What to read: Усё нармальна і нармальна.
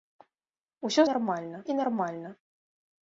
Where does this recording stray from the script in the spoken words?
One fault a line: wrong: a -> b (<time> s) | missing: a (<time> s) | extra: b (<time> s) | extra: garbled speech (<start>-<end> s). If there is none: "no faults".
no faults